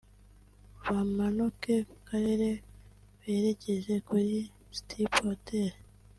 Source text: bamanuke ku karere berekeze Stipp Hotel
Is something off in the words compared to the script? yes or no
yes